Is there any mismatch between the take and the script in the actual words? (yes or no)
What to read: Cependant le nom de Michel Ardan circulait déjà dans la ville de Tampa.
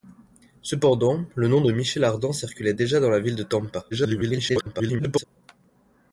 yes